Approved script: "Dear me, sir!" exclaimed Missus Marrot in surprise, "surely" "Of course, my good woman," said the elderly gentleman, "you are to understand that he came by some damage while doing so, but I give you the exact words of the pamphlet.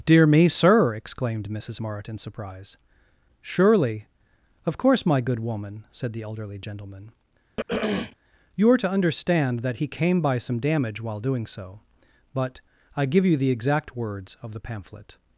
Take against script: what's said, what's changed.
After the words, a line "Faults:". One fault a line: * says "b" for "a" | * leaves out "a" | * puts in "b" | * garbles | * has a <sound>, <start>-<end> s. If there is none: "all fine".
"Dear me, sir!" exclaimed Missus Marrot in surprise, "surely" "Of course, my good woman," said the elderly gentleman, "you are to understand that he came by some damage while doing so, but I give you the exact words of the pamphlet.
Faults:
* has a throat clearing, 7.6-8.2 s